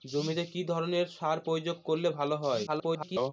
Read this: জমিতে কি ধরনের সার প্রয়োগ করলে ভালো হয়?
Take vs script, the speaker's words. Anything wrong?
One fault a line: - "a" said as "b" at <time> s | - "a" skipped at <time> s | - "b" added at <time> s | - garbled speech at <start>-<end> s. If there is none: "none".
- garbled speech at 2.7-3.3 s